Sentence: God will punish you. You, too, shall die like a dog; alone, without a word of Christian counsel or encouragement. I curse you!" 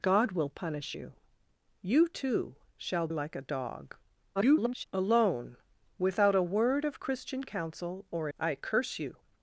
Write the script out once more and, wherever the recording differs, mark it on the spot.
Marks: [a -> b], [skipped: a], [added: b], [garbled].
God will punish you. You, too, shall [skipped: die] like a dog; [garbled] alone, without a word of Christian counsel or [skipped: encouragement.] I curse you!"